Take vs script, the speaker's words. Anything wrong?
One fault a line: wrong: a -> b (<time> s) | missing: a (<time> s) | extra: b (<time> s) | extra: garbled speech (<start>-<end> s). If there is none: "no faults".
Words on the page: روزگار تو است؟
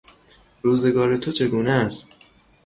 extra: چگونه (1.3 s)